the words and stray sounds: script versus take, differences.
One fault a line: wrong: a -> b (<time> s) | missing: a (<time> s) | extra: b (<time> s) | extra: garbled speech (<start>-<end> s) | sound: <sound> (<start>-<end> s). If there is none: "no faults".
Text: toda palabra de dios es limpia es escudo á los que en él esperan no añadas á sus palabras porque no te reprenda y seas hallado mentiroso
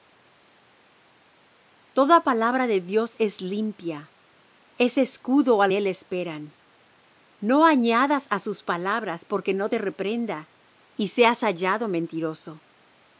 missing: los que en (5.7 s)